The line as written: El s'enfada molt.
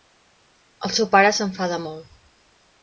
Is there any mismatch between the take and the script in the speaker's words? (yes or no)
yes